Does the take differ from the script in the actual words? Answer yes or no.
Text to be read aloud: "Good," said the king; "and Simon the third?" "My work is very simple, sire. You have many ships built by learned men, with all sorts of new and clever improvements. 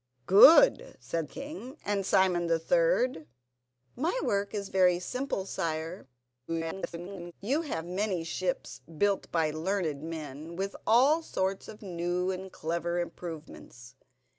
yes